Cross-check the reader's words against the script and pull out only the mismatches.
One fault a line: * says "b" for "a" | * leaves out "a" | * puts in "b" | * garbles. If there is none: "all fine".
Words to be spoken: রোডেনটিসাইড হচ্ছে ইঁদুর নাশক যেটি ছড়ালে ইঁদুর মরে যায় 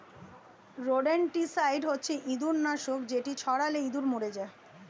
all fine